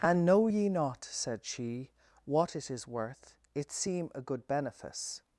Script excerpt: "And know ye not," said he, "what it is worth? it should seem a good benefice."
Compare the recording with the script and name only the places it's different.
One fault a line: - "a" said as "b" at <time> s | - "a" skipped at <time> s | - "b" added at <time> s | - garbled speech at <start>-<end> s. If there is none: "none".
- "he" said as "she" at 1.4 s
- "should" skipped at 3.7 s